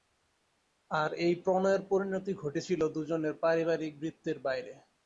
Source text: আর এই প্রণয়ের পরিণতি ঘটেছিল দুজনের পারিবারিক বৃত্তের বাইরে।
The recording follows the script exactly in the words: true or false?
true